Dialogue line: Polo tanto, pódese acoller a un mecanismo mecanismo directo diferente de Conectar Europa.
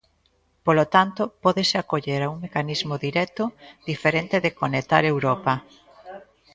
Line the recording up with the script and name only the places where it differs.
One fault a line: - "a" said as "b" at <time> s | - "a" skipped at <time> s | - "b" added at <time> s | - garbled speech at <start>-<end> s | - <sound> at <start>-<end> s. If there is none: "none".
- "mecanismo" skipped at 3.0 s